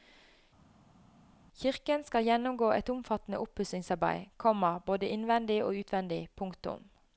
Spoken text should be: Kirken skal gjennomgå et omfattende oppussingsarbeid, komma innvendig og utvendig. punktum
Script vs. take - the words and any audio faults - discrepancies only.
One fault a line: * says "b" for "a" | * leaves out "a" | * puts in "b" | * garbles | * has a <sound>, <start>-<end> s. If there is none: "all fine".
* puts in "både"